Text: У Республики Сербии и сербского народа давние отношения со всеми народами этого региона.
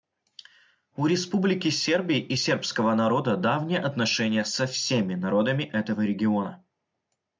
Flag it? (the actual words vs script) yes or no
no